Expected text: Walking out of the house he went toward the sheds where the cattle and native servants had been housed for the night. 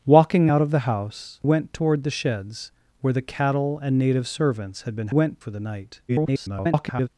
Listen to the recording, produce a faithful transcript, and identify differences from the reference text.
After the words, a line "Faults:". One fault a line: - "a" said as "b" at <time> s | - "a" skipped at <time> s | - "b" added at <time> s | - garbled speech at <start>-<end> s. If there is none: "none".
Walking out of the house went toward the sheds where the cattle and native servants had been went for the night. [garbled]
Faults:
- "he" skipped at 1.4 s
- "housed" said as "went" at 5.1 s
- garbled speech at 6.1-7.1 s